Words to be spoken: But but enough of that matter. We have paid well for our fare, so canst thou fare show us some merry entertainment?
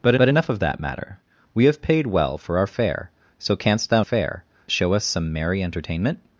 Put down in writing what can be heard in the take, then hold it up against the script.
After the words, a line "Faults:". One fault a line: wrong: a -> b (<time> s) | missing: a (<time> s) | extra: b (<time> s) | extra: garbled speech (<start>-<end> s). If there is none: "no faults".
But but enough of that matter. We have paid well for our fare, so canst thou fare show us some merry entertainment?
Faults:
no faults